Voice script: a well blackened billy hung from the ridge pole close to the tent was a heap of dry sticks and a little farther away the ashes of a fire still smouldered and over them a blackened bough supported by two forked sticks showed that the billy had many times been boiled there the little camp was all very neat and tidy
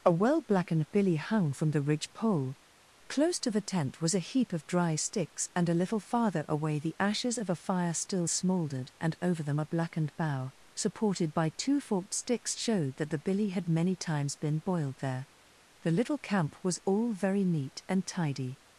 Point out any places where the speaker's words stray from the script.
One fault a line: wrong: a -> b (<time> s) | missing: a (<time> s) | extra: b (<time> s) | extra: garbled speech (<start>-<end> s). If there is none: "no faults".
no faults